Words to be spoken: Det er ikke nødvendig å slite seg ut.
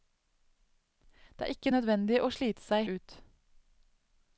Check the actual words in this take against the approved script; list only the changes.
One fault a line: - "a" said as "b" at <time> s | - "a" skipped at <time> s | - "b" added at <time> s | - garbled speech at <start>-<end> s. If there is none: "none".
none